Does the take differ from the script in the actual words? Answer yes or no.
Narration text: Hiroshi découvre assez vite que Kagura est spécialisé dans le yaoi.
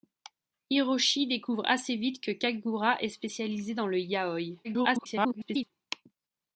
yes